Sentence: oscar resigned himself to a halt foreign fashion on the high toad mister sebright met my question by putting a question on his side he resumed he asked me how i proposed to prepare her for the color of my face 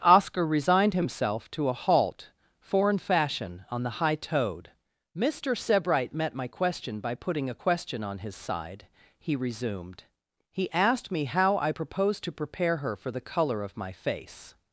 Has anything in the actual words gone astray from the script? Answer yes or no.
no